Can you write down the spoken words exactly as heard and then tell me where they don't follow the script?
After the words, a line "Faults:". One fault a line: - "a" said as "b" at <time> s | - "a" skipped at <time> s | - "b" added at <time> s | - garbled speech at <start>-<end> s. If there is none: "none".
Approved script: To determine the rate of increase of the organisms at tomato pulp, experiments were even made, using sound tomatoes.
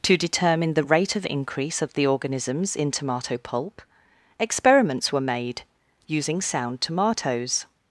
To determine the rate of increase of the organisms in tomato pulp, experiments were made, using sound tomatoes.
Faults:
- "at" said as "in" at 2.8 s
- "even" skipped at 5.2 s